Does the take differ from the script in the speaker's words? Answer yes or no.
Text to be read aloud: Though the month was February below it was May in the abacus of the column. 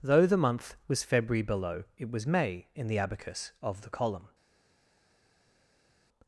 no